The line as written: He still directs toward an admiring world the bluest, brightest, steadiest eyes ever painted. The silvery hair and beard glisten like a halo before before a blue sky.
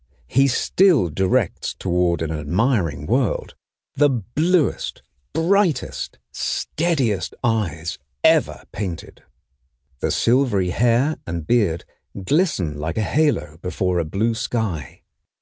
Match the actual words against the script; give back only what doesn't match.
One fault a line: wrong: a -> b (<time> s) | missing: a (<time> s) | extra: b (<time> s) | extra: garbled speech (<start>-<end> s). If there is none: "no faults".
missing: before (14.0 s)